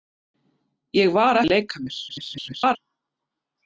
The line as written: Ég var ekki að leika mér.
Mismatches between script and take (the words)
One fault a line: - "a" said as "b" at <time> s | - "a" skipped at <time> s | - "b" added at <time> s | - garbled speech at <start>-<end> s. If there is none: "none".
- "ekki" skipped at 1.4 s
- garbled speech at 2.1-2.8 s